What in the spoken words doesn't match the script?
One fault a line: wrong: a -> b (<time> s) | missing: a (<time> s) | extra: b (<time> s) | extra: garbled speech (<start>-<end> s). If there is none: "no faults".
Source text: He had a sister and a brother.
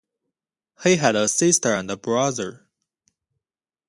no faults